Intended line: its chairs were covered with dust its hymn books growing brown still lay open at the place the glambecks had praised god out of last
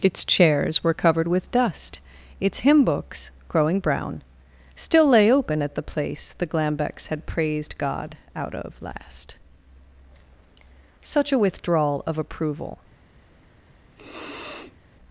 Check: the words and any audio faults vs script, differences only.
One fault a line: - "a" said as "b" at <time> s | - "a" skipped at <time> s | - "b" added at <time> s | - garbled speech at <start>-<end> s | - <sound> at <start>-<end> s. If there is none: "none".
- "such a withdrawal of approval" added at 11.0 s
- sniff at 14.0-14.8 s